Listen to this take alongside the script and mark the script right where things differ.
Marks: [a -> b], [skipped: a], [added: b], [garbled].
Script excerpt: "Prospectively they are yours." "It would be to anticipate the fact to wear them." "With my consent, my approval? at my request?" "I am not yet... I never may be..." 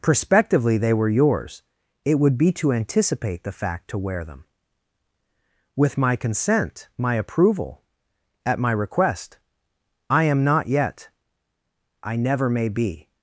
"Prospectively they [are -> were] yours." "It would be to anticipate the fact to wear them." "With my consent, my approval? at my request?" "I am not yet... I never may be..."